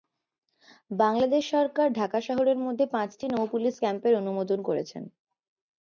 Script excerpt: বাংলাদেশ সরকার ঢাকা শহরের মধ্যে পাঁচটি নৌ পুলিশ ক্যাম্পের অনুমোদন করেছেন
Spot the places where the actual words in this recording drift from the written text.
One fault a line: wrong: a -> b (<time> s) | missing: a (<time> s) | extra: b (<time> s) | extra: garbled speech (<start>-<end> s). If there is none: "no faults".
no faults